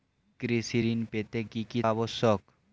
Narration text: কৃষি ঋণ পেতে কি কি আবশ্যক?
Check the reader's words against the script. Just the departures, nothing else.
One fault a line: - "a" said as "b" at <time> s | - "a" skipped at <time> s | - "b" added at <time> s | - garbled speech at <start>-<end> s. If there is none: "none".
none